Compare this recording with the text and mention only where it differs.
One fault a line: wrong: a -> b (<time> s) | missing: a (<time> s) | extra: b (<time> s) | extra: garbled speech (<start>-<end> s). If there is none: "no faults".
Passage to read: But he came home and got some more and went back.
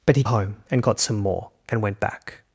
missing: came (0.2 s)